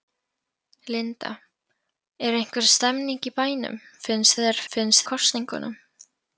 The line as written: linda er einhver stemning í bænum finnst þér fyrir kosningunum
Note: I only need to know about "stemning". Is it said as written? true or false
true